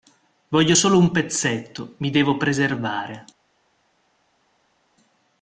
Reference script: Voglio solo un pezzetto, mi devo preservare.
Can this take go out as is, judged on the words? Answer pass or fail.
pass